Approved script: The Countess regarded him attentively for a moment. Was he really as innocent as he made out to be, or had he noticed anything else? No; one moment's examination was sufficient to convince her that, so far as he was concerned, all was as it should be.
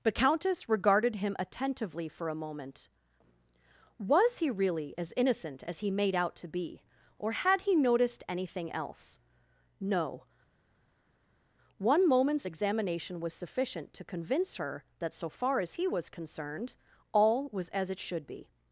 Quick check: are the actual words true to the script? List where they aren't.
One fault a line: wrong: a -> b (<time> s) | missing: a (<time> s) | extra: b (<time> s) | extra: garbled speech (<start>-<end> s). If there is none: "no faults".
wrong: The -> But (0.0 s)